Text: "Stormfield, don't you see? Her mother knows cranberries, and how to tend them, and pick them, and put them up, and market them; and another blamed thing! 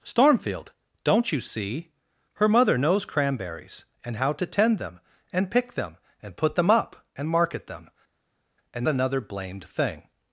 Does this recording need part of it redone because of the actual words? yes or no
no